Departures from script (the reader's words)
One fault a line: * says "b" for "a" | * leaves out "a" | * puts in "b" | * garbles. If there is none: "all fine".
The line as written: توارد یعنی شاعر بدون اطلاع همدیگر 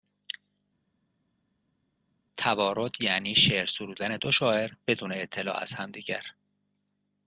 * puts in "شعر سرودن دو"
* puts in "از"